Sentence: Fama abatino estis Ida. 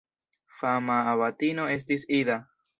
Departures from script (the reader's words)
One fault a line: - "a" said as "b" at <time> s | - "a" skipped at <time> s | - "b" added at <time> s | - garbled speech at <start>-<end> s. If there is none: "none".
none